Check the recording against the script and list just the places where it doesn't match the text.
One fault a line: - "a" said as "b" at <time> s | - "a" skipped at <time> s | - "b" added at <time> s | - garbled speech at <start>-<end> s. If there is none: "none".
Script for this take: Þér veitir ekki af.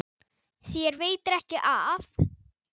none